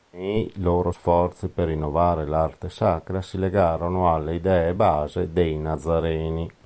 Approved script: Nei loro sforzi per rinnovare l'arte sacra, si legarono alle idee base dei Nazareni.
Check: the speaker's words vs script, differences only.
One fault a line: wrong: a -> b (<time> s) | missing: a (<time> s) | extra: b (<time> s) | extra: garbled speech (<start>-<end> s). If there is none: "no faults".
no faults